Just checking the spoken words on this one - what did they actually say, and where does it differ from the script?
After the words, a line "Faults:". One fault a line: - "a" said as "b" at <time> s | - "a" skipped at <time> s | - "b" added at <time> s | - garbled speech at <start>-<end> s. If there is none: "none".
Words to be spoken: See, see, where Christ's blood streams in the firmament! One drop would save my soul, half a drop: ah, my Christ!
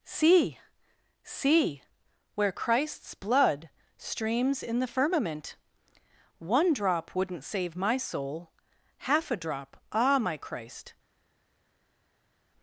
See, see, where Christ's blood streams in the firmament! One drop wouldn't save my soul, half a drop: ah, my Christ!
Faults:
- "would" said as "wouldn't" at 7.2 s